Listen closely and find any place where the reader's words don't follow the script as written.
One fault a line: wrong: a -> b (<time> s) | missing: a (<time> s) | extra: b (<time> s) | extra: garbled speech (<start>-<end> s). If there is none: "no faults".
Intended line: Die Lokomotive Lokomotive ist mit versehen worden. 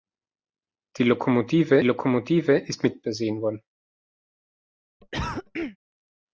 no faults